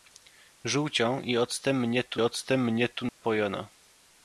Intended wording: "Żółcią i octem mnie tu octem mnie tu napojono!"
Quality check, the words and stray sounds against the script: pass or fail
fail